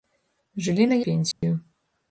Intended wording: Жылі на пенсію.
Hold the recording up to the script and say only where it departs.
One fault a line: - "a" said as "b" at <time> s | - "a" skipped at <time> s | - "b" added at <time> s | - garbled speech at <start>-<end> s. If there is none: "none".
none